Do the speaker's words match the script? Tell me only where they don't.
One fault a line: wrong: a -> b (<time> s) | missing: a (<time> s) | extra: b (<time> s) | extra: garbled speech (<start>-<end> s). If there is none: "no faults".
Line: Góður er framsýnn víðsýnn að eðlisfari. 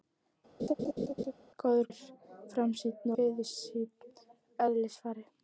no faults